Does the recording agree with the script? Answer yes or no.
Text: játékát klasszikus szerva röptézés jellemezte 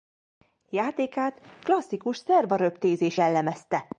yes